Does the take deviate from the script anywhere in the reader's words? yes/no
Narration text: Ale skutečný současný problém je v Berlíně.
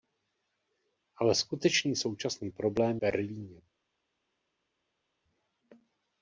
yes